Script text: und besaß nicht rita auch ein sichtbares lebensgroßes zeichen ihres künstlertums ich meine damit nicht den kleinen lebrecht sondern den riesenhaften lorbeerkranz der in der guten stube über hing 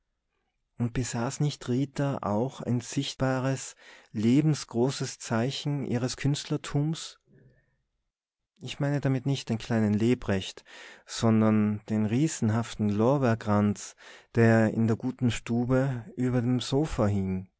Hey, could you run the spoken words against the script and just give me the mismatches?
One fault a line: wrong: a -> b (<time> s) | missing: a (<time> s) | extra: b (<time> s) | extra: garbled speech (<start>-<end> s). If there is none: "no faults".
extra: dem sofa (16.4 s)